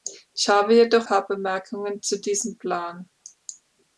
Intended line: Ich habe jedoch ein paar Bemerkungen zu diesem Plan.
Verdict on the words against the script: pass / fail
fail